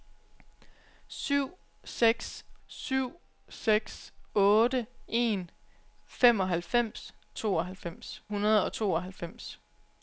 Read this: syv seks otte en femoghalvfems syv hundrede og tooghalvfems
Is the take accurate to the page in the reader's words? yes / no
no